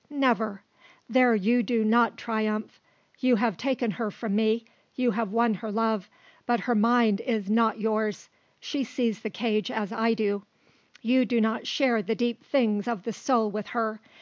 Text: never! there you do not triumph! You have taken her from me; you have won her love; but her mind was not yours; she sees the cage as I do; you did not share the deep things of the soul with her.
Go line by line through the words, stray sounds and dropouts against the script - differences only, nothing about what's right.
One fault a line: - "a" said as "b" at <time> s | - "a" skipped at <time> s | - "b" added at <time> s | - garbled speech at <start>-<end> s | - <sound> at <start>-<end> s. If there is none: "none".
- "was" said as "is" at 7.2 s
- "did" said as "do" at 11.2 s